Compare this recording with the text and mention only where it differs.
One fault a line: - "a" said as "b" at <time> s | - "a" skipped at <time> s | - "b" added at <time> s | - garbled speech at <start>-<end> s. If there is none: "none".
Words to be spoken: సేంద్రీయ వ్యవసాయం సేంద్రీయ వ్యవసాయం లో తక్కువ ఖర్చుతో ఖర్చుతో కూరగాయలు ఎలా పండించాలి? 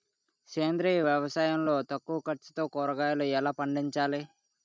- "సేంద్రీయ వ్యవసాయం" skipped at 1.6 s
- "ఖర్చుతో" skipped at 2.6 s